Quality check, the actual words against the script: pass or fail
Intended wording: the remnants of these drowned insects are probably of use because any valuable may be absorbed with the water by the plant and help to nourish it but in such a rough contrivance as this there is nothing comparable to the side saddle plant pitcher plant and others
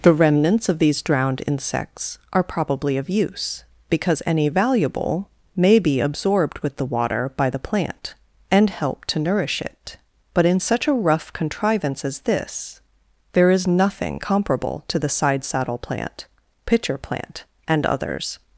pass